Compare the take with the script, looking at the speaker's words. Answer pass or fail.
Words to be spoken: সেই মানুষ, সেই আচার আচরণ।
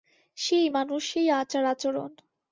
pass